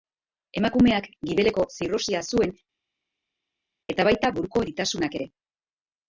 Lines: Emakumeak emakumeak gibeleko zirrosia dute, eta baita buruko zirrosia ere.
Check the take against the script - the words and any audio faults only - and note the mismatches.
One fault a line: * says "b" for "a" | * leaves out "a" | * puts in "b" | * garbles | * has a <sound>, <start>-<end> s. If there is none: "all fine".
* leaves out "emakumeak"
* says "zuen" for "dute"
* says "eritasunak" for "zirrosia"